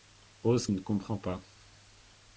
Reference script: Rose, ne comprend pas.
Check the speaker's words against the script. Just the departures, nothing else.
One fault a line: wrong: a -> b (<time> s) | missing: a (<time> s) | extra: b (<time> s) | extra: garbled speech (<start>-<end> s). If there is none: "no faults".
no faults